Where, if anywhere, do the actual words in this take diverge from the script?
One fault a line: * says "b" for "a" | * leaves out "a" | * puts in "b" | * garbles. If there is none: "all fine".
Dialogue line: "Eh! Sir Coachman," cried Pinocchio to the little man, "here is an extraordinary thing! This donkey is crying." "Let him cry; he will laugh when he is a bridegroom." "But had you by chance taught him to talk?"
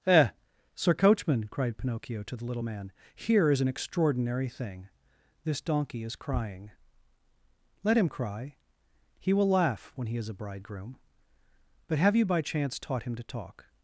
* says "have" for "had"